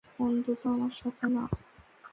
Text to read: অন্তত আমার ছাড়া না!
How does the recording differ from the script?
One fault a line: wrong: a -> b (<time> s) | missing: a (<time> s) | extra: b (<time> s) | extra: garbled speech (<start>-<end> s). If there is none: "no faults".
wrong: ছাড়া -> সাথে (1.0 s)